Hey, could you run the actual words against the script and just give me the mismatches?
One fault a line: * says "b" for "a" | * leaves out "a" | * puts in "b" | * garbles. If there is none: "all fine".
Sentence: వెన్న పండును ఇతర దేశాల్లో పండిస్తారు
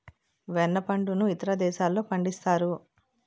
all fine